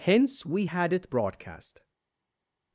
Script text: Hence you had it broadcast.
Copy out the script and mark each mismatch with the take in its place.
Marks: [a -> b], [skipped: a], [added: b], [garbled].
Hence [you -> we] had it broadcast.